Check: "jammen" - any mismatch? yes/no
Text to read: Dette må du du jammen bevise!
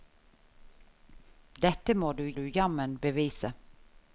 no